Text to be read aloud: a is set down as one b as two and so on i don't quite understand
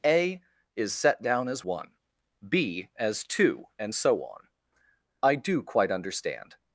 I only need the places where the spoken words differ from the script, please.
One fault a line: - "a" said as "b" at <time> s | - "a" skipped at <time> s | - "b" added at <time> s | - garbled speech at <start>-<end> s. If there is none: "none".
- "don't" said as "do" at 5.4 s